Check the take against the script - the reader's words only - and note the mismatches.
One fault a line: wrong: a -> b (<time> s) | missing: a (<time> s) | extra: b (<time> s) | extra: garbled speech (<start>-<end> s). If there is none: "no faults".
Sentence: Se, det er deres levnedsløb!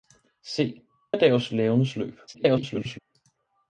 missing: det (0.8 s)
extra: garbled speech (2.3-3.0 s)